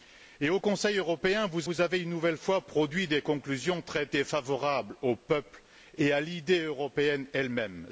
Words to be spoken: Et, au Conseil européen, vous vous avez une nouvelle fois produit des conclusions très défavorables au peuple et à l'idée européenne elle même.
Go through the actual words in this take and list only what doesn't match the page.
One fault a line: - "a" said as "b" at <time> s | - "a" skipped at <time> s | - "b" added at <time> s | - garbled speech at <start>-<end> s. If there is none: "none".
none